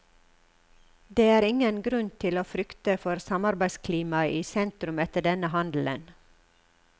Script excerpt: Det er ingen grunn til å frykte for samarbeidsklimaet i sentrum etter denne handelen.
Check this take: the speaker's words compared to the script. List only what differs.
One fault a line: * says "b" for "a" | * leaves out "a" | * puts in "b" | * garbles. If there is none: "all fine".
all fine